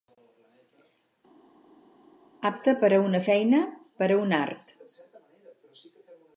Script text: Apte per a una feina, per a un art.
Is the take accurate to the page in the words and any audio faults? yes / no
yes